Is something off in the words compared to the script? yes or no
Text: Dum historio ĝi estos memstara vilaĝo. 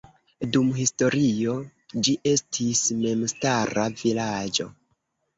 yes